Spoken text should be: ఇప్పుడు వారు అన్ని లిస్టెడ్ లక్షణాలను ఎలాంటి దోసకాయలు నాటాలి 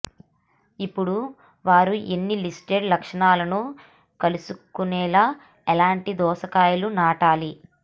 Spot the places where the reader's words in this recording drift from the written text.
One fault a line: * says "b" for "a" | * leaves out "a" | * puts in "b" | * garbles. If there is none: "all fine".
* puts in "కలుసుకునేలా"